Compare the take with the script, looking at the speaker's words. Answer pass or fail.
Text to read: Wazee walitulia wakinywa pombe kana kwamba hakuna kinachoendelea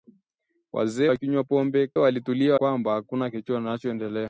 fail